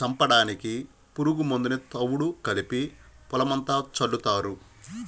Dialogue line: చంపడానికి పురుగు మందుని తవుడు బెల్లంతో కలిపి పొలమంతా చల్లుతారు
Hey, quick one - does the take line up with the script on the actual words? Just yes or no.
no